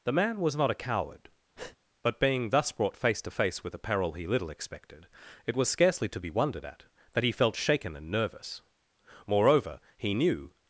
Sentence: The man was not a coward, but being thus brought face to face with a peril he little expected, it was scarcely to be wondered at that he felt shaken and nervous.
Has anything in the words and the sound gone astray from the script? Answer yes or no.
yes